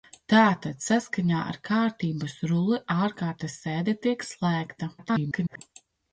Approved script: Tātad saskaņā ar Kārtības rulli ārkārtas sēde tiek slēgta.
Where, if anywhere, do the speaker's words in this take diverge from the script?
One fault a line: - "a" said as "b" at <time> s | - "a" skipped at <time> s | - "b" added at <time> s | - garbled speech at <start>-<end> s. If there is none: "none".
- garbled speech at 5.0-5.6 s